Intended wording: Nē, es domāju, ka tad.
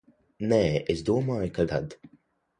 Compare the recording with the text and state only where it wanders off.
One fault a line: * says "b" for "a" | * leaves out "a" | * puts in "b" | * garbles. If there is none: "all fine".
all fine